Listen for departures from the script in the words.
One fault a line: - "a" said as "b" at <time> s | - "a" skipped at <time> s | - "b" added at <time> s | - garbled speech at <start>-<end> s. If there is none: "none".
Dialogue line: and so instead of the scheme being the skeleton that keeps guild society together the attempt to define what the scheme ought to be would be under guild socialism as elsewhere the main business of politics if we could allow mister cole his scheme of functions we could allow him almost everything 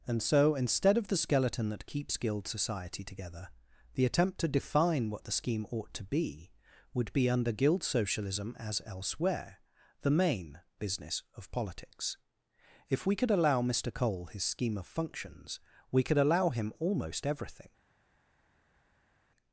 - "scheme being the" skipped at 1.2 s